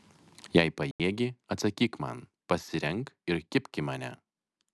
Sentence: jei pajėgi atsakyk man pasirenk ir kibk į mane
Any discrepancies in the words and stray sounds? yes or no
yes